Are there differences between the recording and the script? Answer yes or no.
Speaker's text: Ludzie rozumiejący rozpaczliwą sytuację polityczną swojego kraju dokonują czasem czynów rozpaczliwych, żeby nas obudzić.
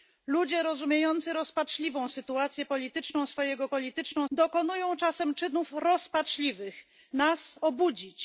yes